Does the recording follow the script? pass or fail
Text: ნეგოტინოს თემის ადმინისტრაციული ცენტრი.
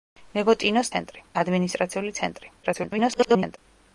fail